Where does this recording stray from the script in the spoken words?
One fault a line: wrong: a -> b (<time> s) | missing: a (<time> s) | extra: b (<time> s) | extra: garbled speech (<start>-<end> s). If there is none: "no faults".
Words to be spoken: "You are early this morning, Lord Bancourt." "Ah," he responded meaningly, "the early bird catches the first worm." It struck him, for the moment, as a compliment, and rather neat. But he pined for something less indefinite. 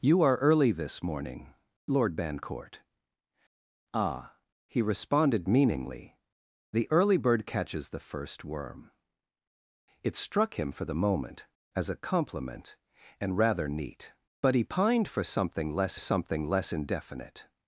extra: something less (16.0 s)